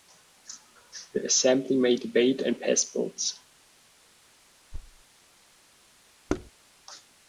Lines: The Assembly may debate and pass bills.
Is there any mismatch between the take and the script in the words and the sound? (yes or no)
yes